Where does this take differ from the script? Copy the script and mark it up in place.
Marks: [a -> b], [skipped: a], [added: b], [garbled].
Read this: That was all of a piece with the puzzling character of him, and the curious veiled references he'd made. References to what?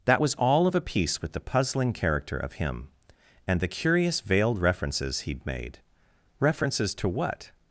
That was all of a piece with the puzzling character of him, and the curious veiled references he'd made. References to what?